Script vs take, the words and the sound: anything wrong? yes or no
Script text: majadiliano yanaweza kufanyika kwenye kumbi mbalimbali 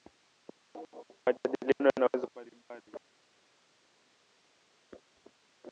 yes